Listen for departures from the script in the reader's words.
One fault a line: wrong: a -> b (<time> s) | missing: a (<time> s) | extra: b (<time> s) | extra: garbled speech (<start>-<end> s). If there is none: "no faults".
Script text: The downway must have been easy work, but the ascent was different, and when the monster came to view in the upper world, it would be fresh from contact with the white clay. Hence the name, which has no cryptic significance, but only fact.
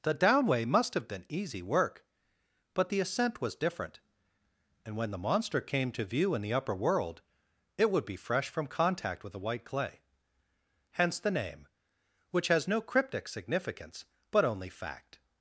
no faults